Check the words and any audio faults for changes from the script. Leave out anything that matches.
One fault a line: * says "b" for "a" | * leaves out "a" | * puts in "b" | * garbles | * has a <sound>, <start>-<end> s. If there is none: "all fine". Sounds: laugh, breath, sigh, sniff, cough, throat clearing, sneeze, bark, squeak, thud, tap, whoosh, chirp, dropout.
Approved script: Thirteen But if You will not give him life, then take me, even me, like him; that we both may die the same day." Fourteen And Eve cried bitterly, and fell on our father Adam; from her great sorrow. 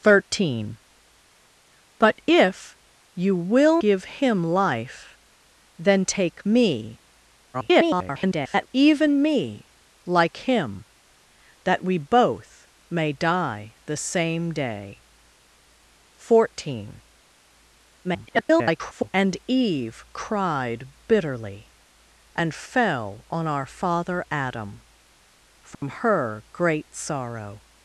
* leaves out "not"
* garbles
* garbles
* has a dropout, 25.7-25.8 s